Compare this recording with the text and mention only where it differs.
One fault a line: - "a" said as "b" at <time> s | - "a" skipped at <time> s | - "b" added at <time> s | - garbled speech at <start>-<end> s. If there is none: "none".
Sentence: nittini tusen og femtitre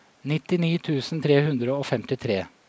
- "tre hundre" added at 1.2 s